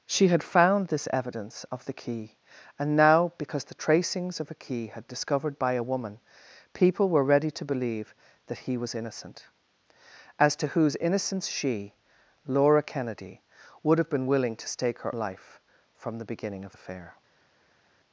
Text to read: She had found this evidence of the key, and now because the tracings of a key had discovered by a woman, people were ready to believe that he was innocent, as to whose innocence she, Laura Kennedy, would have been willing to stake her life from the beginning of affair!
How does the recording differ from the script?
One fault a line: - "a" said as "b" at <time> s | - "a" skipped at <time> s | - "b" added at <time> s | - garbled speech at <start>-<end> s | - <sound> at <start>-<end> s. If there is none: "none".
none